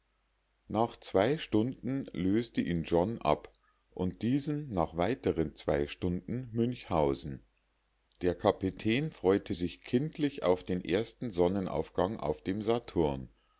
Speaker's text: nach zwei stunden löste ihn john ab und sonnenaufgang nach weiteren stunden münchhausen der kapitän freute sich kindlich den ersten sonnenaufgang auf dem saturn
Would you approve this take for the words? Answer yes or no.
no